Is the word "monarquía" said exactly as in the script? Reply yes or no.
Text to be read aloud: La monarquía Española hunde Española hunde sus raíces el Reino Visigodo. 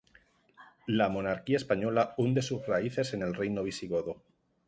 yes